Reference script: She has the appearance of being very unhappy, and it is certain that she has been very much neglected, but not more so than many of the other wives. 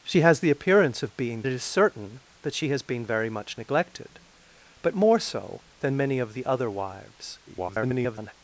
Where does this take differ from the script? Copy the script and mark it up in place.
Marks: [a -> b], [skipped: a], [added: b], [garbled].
She has the appearance of being [skipped: very unhappy, and] it is certain that she has been very much neglected, but [skipped: not] more so than many of the other wives. [garbled]